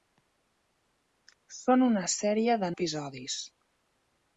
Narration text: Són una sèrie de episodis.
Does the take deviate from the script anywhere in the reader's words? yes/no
no